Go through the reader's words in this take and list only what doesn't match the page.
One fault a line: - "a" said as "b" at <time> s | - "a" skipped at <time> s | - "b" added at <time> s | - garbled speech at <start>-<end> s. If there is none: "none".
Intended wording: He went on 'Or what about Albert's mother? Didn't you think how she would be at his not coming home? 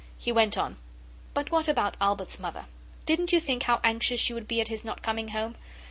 - "Or" said as "But" at 1.4 s
- "anxious" added at 3.8 s